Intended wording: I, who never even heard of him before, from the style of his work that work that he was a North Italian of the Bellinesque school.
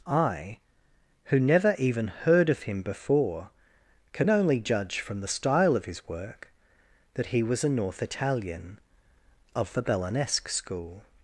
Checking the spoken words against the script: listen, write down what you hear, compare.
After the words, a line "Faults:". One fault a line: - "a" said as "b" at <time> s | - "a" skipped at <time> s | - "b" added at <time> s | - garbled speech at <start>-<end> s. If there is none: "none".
I, who never even heard of him before, can only judge from the style of his work that he was a North Italian of the Bellinesque school.
Faults:
- "can only judge" added at 4.1 s
- "work that" skipped at 7.3 s